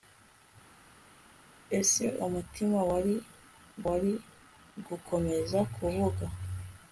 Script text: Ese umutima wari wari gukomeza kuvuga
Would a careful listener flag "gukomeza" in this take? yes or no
no